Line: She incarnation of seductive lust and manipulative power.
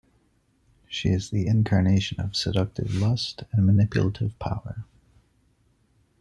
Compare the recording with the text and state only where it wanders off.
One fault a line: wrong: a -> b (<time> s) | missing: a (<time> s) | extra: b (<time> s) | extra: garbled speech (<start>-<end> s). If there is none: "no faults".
extra: is the (1.1 s)